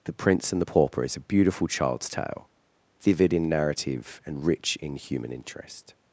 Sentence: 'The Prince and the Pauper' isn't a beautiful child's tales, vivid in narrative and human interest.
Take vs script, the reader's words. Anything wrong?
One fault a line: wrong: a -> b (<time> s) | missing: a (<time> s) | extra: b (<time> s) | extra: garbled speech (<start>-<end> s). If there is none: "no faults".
wrong: isn't -> is (1.0 s)
wrong: tales -> tale (2.1 s)
extra: rich in (4.4 s)